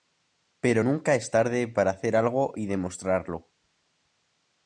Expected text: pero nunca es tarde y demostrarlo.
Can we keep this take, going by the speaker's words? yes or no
no